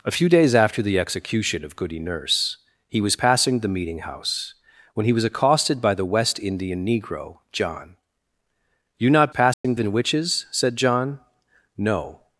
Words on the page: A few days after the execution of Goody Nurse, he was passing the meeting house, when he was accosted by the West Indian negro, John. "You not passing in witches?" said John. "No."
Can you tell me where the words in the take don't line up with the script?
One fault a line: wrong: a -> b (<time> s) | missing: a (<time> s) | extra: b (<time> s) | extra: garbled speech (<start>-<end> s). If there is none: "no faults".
no faults